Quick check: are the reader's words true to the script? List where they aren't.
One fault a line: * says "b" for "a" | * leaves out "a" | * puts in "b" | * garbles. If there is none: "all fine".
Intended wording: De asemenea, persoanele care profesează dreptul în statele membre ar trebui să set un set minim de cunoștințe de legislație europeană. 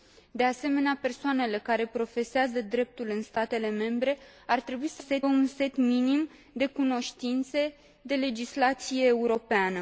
all fine